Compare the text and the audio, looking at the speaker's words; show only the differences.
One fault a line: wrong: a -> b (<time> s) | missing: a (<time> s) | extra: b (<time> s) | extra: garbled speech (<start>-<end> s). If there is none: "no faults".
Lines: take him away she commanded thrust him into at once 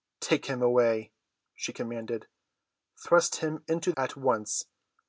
no faults